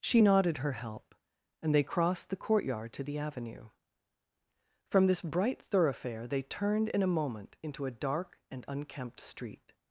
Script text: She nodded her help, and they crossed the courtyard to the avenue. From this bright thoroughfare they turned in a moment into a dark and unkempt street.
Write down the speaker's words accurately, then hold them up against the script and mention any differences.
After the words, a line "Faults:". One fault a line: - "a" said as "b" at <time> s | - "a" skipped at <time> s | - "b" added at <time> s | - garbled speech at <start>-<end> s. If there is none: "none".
She nodded her help, and they crossed the courtyard to the avenue. From this bright thoroughfare they turned in a moment into a dark and unkempt street.
Faults:
none